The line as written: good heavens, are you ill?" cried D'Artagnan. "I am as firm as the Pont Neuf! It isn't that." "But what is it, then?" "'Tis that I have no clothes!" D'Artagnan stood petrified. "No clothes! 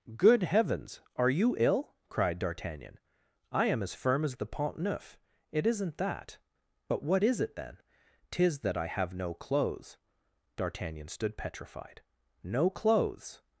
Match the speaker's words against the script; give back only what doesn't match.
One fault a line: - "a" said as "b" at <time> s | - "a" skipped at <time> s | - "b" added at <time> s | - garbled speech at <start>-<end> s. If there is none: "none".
none